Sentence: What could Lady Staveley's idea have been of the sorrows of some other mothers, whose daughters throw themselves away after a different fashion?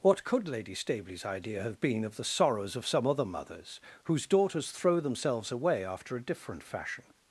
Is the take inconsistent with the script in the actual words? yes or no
no